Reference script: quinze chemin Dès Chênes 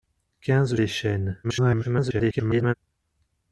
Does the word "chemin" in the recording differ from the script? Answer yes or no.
yes